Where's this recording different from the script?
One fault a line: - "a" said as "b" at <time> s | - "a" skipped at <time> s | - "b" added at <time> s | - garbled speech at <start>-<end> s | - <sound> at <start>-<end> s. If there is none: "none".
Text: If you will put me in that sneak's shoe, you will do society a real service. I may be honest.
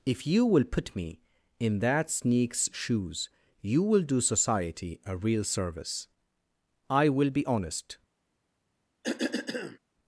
- "shoe" said as "shoes" at 2.7 s
- "may" said as "will" at 7.1 s
- cough at 9.0-9.8 s